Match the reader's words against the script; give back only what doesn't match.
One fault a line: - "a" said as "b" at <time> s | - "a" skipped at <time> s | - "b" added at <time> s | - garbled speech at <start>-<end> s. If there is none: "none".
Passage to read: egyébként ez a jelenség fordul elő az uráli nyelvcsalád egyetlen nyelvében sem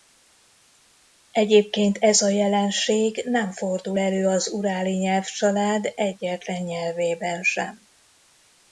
- "nem" added at 3.2 s